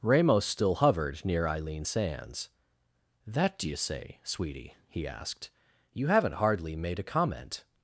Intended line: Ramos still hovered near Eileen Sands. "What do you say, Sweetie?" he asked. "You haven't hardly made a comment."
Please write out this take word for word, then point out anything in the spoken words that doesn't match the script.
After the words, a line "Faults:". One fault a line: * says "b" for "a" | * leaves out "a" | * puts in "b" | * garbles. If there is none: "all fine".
Ramos still hovered near Eileen Sands. "That do you say, Sweetie?" he asked. "You haven't hardly made a comment."
Faults:
* says "That" for "What"